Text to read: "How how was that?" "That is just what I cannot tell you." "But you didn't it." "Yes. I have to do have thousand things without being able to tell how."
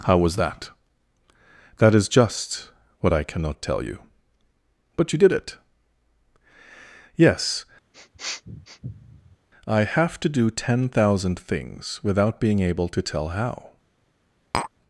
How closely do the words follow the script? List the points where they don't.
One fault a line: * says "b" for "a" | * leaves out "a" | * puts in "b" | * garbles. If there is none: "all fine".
* leaves out "how"
* says "did" for "didn't"
* says "ten" for "have"